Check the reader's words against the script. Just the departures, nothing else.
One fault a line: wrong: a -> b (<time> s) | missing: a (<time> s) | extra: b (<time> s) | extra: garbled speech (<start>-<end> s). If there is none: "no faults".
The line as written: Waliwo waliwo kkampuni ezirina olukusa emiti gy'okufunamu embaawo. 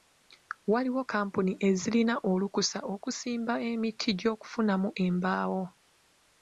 missing: waliwo (1.0 s)
extra: okusimba (2.9 s)